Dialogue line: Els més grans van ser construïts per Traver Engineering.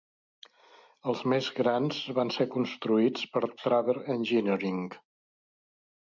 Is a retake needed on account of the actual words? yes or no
no